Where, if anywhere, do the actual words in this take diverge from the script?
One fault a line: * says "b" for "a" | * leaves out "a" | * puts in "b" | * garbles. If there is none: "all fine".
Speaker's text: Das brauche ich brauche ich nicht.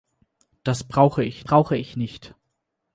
all fine